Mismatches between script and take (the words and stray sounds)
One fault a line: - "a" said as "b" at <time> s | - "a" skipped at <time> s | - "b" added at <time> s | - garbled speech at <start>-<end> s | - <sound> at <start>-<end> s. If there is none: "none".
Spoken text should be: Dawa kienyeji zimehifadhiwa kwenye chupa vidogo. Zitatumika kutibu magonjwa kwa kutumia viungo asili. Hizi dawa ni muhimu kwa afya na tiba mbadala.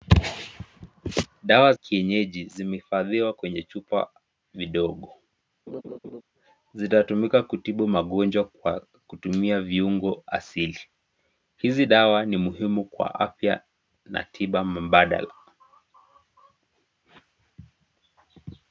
- laugh at 5.7-6.2 s